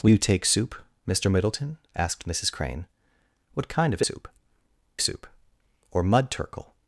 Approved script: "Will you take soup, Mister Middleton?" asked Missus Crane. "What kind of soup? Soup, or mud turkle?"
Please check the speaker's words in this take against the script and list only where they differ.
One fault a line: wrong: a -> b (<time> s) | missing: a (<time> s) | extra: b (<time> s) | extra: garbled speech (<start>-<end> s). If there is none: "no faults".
no faults